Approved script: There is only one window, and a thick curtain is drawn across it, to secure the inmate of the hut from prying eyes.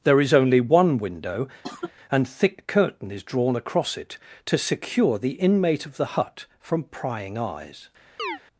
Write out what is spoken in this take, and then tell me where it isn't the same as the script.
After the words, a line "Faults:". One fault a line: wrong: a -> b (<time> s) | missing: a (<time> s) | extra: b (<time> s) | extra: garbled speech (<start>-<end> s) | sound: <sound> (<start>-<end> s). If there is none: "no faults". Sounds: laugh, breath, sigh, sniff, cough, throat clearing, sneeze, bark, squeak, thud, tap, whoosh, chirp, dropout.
There is only one window, and thick curtain is drawn across it, to secure the inmate of the hut from prying eyes.
Faults:
sound: cough (1.6-1.9 s)
missing: a (2.3 s)
sound: chirp (8.2-8.4 s)